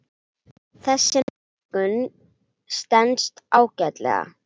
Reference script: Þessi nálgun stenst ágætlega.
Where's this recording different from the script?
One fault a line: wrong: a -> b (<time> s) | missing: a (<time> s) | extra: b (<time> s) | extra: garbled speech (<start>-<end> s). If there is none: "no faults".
no faults